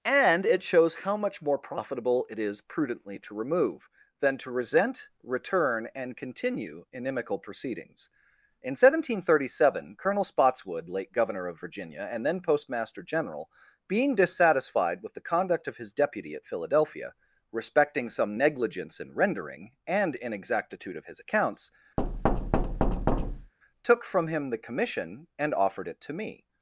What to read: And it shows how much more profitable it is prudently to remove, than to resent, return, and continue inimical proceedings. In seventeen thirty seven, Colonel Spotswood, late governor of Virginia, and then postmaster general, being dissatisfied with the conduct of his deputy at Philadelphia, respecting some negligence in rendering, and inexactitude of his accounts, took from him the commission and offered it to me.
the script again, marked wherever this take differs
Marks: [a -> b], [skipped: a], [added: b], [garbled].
And it shows how much more profitable it is prudently to remove, than to resent, return, and continue inimical proceedings. In seventeen thirty seven, Colonel Spotswood, late governor of Virginia, and then postmaster general, being dissatisfied with the conduct of his deputy at Philadelphia, respecting some negligence in rendering, and inexactitude of his accounts, took from him the commission and offered it to me.